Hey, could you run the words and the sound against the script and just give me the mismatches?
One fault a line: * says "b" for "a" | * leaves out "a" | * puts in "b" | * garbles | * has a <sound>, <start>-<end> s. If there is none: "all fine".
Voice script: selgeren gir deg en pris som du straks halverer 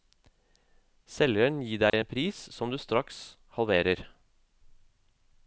* has a dropout, 1.9-1.9 s